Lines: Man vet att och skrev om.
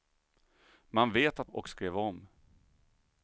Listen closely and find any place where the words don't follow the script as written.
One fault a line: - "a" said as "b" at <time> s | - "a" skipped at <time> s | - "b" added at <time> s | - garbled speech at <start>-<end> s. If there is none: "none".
none